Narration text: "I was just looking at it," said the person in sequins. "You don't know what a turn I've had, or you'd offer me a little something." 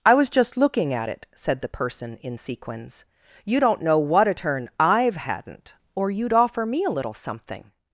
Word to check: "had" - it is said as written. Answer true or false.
false